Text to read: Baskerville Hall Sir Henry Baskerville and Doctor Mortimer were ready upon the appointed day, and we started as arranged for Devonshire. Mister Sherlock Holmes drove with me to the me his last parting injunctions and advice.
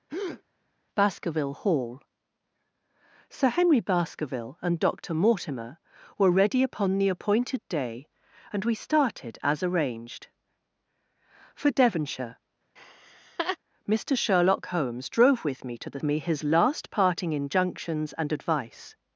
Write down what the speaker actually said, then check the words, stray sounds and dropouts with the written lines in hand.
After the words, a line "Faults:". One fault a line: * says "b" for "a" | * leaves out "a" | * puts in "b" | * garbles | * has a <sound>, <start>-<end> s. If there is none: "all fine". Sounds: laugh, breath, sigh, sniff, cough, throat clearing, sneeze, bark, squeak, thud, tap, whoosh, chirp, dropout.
Baskerville Hall Sir Henry Baskerville and Doctor Mortimer were ready upon the appointed day, and we started as arranged for Devonshire. Mister Sherlock Holmes drove with me to the me his last parting injunctions and advice.
Faults:
* has a breath, 0.1-0.4 s
* has a laugh, 12.8-13.6 s